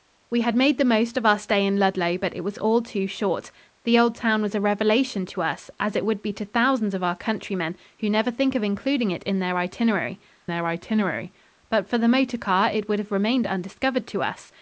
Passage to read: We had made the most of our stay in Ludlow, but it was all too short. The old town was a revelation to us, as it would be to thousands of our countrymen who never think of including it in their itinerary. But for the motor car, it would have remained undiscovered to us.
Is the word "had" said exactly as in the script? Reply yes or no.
yes